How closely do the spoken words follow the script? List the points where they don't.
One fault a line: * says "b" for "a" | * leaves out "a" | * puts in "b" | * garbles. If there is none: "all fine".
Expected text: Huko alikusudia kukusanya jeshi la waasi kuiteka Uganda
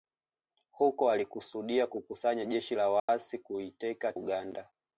all fine